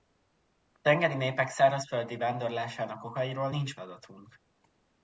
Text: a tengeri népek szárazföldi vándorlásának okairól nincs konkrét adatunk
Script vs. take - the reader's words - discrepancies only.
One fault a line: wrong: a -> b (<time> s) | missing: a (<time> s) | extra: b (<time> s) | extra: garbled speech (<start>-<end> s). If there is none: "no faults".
missing: konkrét (3.8 s)